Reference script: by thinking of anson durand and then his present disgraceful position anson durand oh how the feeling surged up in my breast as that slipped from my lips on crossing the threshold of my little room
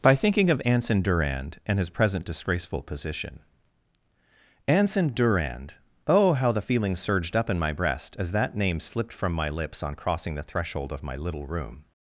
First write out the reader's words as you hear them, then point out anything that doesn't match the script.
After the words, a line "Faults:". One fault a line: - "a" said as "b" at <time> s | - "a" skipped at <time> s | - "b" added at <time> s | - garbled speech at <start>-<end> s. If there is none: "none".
by thinking of anson durand and his present disgraceful position anson durand oh how the feeling surged up in my breast as that name slipped from my lips on crossing the threshold of my little room
Faults:
- "then" skipped at 1.8 s
- "name" added at 8.5 s